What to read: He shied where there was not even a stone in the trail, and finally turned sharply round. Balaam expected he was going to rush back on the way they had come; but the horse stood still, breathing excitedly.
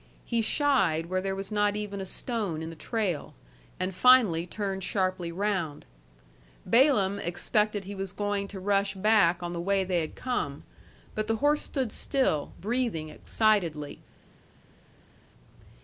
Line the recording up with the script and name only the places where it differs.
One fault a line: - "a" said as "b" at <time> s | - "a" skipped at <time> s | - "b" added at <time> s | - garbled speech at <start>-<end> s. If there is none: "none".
none